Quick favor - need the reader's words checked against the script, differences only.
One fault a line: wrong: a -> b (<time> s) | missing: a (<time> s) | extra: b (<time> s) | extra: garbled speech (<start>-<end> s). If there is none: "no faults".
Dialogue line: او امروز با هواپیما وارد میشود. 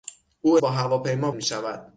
missing: امروز (0.6 s)
missing: وارد (1.3 s)